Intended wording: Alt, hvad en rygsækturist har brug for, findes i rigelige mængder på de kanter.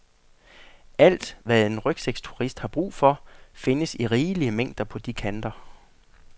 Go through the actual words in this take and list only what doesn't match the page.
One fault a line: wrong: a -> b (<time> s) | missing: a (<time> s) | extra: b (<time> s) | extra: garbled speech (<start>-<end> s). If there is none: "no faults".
no faults